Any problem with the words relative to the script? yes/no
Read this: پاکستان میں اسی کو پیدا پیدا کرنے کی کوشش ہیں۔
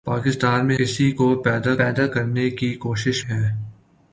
no